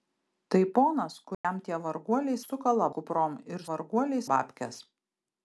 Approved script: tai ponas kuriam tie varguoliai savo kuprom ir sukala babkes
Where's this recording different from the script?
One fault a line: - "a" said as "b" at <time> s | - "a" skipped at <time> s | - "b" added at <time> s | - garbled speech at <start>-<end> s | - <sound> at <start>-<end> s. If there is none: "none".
- dropout at 1.3-1.4 s
- "savo" said as "sukala" at 2.4 s
- "sukala" said as "varguoliai" at 3.7 s